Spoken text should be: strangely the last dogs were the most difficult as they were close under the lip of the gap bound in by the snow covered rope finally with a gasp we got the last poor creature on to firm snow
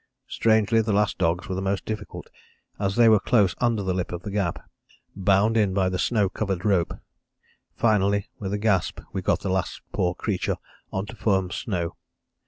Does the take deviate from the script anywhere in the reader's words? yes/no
no